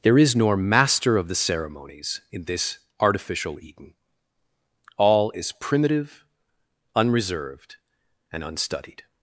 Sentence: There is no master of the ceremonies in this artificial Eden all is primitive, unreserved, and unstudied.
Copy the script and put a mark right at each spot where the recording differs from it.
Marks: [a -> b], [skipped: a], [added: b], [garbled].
There is [no -> nor] master of the ceremonies in this artificial Eden all is primitive, unreserved, and unstudied.